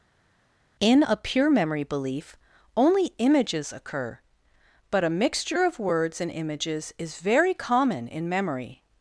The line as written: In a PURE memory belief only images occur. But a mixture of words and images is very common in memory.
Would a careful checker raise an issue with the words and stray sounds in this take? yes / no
no